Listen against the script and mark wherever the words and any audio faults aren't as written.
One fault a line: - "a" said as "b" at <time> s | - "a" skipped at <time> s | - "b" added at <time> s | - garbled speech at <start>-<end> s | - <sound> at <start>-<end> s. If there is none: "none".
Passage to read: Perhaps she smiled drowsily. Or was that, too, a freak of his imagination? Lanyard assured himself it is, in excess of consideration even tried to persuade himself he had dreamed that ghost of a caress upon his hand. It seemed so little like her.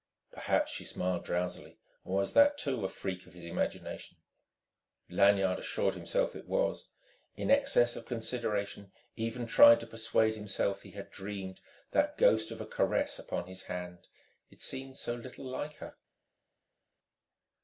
- "is" said as "was" at 6.5 s